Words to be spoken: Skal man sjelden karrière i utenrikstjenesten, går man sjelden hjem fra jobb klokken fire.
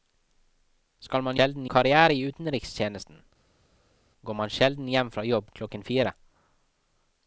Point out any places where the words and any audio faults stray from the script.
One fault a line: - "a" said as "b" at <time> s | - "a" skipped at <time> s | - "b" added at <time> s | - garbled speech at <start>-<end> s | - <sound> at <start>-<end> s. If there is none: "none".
none